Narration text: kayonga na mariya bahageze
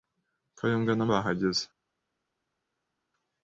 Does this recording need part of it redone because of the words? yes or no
yes